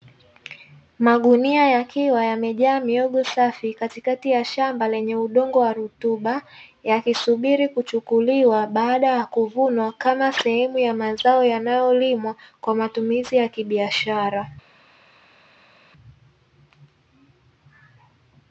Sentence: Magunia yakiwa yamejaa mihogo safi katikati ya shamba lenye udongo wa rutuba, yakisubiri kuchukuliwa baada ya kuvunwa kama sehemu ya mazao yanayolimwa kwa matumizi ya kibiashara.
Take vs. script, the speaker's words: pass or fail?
pass